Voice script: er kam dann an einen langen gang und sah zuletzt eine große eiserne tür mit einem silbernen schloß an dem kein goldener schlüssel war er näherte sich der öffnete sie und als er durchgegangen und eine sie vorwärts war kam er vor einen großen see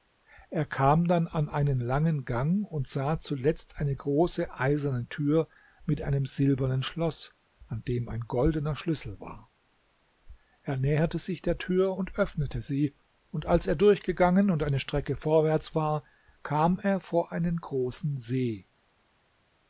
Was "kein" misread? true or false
true